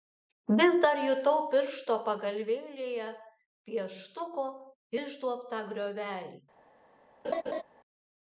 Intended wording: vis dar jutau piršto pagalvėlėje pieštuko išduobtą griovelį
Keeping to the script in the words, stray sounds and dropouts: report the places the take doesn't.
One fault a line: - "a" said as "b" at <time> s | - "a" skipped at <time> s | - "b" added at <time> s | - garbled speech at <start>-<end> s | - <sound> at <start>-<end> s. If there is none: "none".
- laugh at 7.2-7.6 s